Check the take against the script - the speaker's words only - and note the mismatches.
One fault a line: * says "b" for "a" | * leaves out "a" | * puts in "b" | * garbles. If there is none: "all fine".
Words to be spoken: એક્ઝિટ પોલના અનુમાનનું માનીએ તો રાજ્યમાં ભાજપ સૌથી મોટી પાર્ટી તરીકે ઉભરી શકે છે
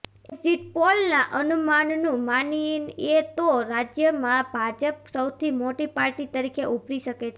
all fine